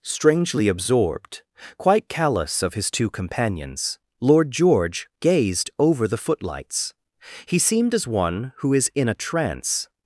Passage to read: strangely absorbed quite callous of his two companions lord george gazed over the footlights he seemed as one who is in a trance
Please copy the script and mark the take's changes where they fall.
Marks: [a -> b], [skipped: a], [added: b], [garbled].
strangely absorbed quite callous of his two companions lord george gazed over the footlights he seemed as one who is in a trance